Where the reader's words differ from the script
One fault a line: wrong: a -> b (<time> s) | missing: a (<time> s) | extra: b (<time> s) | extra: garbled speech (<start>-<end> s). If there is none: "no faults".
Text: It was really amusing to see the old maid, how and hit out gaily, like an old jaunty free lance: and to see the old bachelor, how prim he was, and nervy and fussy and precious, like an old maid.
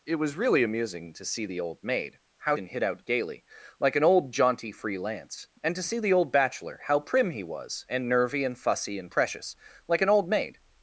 no faults